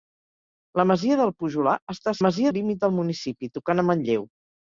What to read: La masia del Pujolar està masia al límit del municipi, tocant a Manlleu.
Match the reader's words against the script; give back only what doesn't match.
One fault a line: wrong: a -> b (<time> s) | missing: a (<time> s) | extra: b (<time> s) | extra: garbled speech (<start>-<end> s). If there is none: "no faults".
no faults